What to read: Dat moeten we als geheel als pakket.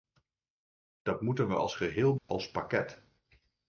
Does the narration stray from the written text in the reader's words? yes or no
no